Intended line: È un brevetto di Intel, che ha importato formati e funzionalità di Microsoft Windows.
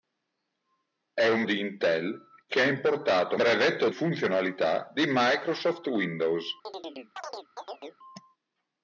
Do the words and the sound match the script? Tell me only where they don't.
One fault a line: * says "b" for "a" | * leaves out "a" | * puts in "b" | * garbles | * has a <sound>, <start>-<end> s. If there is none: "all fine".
* leaves out "brevetto"
* says "brevetto" for "formati"
* has a chirp, 6.6-8.0 s